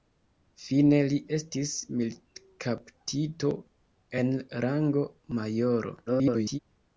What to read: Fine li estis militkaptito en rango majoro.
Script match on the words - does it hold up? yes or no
no